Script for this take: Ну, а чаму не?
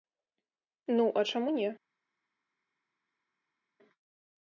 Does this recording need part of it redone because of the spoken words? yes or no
no